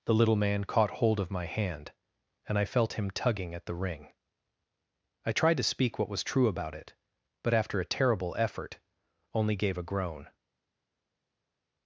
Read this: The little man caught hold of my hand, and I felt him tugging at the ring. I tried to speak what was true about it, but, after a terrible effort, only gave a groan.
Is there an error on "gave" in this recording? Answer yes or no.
no